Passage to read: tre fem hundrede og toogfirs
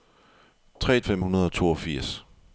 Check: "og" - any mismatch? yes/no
no